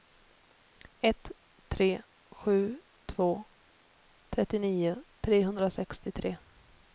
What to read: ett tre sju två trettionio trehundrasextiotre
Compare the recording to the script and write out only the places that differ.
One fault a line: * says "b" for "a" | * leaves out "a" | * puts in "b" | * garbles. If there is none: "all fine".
all fine